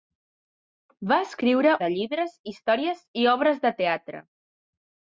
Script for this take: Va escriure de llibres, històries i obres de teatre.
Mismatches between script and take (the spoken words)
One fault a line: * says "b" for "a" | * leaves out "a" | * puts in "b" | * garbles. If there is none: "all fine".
all fine